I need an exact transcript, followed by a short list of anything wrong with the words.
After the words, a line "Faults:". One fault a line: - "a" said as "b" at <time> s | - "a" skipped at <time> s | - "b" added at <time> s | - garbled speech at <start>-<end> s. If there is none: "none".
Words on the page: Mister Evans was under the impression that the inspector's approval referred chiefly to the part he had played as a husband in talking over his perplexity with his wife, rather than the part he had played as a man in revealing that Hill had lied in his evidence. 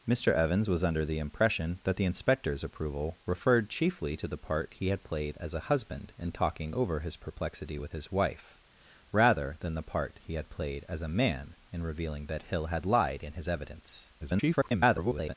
Mister Evans was under the impression that the inspector's approval referred chiefly to the part he had played as a husband in talking over his perplexity with his wife, rather than the part he had played as a man in revealing that Hill had lied in his evidence. [garbled]
Faults:
- garbled speech at 14.2-15.3 s